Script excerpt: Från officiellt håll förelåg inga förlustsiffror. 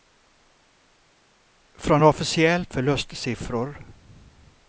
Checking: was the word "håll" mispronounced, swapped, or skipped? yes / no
yes